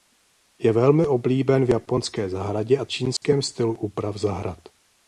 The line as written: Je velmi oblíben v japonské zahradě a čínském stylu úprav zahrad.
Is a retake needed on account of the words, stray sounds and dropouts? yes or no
yes